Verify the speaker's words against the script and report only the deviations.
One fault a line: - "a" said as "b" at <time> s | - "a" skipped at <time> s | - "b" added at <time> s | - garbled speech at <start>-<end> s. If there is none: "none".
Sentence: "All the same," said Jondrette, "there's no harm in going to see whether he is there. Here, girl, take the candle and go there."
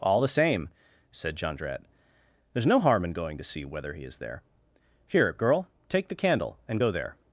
none